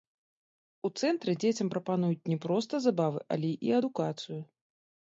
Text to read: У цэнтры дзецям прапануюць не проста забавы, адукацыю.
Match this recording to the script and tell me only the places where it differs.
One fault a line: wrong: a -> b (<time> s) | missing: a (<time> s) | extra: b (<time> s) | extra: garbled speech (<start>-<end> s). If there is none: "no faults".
extra: але і (3.4 s)